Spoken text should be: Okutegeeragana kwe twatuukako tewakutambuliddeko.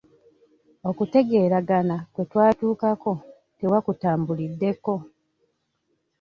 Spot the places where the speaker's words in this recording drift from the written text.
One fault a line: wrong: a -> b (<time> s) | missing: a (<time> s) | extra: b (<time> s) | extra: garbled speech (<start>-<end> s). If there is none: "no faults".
no faults